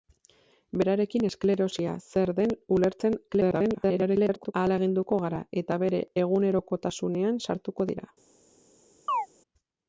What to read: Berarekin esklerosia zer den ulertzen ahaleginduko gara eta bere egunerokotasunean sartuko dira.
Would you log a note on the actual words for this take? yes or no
yes